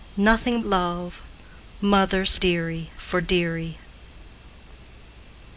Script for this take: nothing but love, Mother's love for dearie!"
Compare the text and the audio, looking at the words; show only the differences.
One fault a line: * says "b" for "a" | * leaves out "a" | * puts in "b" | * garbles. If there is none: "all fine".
* leaves out "but"
* says "dearie" for "love"